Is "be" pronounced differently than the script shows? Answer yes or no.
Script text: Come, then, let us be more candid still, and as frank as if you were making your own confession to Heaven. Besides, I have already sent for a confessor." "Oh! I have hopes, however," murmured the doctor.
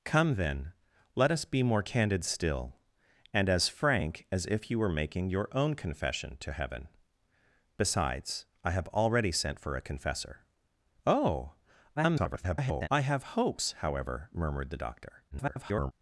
no